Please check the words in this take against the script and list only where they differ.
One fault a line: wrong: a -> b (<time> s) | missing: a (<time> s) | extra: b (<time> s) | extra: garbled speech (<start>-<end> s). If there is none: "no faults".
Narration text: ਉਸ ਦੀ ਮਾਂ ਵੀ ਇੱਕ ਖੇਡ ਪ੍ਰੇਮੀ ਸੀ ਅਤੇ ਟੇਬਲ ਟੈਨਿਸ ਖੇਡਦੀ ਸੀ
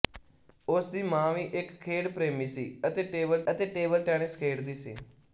extra: ਅਤੇ ਟੇਬਲ (3.5 s)